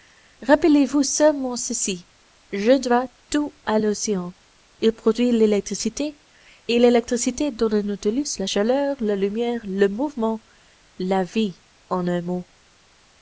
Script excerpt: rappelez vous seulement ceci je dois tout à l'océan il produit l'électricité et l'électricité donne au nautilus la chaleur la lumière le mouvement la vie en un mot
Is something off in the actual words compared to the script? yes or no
no